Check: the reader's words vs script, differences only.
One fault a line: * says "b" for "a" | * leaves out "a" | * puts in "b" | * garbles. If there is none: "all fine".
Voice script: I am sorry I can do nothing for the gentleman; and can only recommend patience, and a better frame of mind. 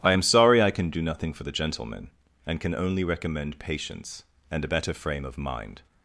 all fine